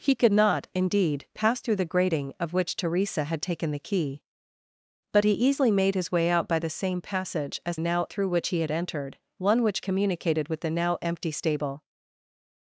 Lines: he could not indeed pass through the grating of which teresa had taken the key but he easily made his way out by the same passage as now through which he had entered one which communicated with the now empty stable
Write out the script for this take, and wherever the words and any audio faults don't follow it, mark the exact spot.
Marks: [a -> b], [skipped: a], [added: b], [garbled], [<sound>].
he could not indeed pass through the grating of which teresa had taken the key but he easily made his way out by the same passage as now through which he had entered one which communicated with the now empty stable